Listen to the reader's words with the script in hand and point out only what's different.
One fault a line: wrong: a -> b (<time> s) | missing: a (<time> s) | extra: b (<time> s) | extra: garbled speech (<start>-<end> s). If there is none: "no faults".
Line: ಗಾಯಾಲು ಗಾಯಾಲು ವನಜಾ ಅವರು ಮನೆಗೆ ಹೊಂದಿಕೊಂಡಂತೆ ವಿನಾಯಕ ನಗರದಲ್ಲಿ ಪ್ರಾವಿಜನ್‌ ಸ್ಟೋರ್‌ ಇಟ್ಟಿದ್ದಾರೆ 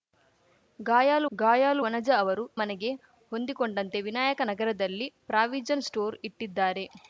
no faults